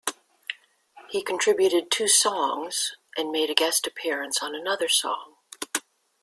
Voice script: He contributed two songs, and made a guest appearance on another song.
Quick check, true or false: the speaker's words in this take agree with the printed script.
true